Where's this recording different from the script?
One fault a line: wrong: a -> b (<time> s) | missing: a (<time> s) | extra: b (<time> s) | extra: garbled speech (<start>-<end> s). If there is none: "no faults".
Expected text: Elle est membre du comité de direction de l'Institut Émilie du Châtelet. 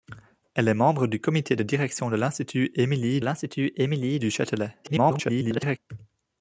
extra: l'Institut Émilie (3.2 s)
extra: garbled speech (4.8-5.8 s)